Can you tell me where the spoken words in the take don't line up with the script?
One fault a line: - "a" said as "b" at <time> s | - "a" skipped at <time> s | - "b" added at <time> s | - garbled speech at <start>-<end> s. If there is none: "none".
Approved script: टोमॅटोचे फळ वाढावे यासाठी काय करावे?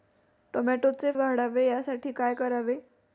- "फळ" skipped at 1.1 s